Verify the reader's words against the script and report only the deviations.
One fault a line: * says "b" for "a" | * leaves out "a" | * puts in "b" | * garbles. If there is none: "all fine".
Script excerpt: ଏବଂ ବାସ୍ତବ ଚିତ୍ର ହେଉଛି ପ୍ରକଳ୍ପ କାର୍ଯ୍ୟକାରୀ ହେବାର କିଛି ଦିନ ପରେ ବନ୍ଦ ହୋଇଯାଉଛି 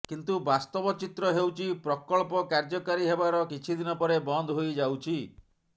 * says "କିନ୍ତୁ" for "ଏବଂ"